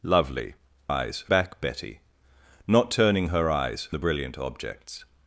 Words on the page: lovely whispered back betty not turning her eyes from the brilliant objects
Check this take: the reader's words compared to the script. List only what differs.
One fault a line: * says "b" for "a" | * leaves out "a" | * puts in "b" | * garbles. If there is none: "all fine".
* says "eyes" for "whispered"
* leaves out "from"